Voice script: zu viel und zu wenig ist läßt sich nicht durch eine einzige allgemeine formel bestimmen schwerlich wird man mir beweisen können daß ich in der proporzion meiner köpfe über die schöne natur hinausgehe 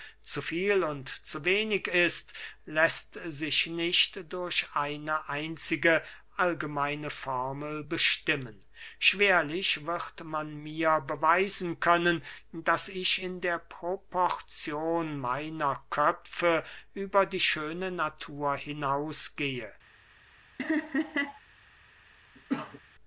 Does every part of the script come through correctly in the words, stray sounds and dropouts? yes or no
no